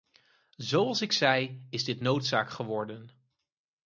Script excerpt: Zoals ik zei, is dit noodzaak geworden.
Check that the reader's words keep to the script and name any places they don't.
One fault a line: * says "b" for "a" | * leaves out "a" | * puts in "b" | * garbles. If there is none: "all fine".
all fine